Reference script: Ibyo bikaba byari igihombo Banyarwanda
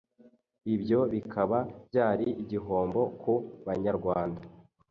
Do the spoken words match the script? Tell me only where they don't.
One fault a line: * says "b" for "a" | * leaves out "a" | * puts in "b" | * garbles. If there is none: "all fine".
* puts in "ku"